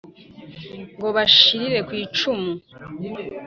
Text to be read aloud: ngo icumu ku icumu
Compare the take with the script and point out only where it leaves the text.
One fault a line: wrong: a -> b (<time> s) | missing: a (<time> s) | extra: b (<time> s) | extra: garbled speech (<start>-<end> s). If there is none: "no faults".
wrong: icumu -> bashirire (1.1 s)